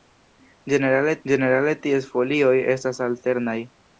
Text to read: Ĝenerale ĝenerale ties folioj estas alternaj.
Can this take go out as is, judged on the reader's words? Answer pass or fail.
pass